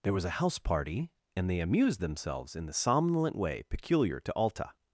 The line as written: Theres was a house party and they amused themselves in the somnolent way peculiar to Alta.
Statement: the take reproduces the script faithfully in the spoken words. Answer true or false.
false